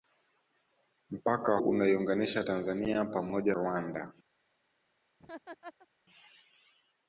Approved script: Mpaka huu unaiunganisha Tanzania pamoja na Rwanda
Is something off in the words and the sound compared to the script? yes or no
yes